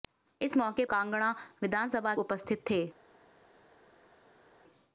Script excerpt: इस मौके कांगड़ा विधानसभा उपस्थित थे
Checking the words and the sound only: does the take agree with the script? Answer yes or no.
yes